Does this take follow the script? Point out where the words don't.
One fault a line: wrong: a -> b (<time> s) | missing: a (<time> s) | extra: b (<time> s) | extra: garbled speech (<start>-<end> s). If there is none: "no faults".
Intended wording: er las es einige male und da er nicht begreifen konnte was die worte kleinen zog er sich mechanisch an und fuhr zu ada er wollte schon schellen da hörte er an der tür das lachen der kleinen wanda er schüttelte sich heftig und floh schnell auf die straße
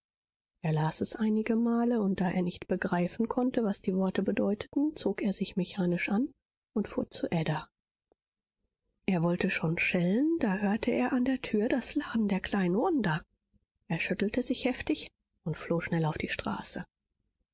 wrong: kleinen -> bedeuteten (4.2 s)